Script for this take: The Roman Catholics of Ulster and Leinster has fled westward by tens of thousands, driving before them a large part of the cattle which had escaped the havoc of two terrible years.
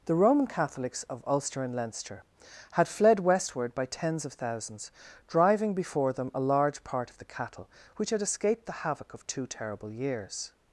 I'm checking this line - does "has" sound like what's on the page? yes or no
no